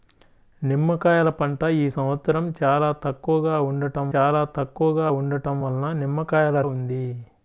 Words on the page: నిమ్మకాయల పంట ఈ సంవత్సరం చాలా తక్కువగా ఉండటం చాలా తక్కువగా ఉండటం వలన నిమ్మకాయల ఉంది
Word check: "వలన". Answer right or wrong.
right